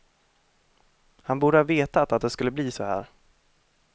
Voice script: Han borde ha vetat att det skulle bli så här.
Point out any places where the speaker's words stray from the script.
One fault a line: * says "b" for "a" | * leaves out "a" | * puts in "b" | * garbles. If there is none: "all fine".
all fine